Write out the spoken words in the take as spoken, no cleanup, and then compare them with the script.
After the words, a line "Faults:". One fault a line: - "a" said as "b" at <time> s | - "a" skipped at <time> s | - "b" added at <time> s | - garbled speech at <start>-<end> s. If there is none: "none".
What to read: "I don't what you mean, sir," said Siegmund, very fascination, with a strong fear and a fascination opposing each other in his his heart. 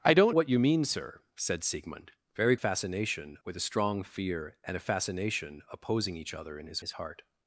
"I don't what you mean, sir," said Siegmund, very fascination, with a strong fear and a fascination opposing each other in his his heart.
Faults:
none